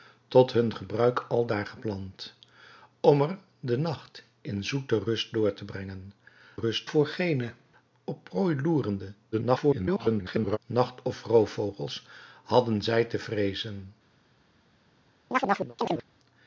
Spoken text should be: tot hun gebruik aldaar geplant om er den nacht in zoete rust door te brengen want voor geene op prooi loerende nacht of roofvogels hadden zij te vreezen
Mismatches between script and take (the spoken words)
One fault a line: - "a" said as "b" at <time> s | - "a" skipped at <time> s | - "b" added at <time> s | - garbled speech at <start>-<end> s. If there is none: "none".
- "want" said as "rust" at 6.6 s
- garbled speech at 9.3-10.6 s